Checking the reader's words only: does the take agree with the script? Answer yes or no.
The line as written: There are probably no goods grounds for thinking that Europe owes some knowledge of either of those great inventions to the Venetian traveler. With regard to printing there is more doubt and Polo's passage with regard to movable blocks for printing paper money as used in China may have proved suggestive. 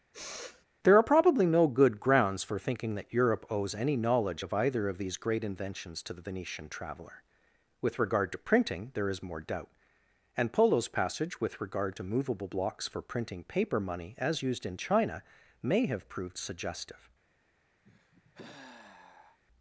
no